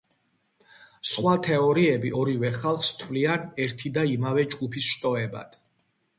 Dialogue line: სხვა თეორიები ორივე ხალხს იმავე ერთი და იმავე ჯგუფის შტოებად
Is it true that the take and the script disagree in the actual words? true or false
true